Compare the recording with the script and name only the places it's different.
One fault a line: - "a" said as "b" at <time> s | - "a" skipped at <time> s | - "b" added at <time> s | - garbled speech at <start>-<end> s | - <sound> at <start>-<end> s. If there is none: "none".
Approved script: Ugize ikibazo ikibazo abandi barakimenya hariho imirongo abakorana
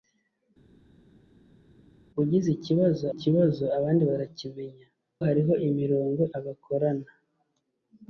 none